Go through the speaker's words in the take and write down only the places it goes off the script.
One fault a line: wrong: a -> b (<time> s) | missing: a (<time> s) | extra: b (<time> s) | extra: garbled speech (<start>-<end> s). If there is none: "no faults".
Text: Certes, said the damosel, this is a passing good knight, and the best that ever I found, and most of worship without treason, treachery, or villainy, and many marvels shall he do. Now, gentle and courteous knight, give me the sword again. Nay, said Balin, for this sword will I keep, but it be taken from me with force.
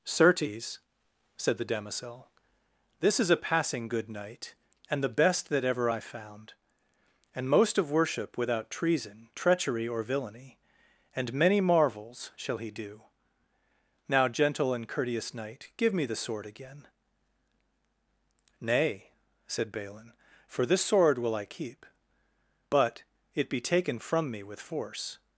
no faults